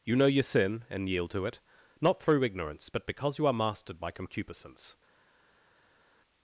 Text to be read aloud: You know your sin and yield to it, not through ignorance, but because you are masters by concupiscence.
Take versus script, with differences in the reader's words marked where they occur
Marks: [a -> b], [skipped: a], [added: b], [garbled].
You know your sin and yield to it, not through ignorance, but because you are [masters -> mastered] by concupiscence.